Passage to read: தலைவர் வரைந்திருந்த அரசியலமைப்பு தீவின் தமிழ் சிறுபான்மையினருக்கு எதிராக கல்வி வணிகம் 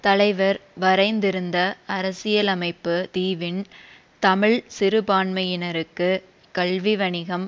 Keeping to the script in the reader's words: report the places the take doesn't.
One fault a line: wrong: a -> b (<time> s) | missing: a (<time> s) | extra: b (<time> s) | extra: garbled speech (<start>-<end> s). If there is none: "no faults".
missing: எதிராக (6.1 s)